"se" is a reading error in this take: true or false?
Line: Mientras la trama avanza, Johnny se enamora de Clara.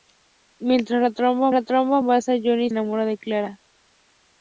true